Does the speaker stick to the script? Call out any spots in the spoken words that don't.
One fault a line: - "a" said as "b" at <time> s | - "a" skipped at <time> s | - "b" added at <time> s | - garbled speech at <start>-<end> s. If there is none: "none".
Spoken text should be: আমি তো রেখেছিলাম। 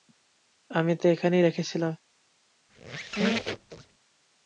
- "এখানেই" added at 1.1 s